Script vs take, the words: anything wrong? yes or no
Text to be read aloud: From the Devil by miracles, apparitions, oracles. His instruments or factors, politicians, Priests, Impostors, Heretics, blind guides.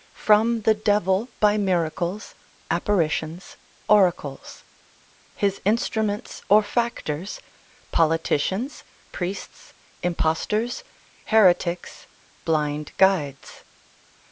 no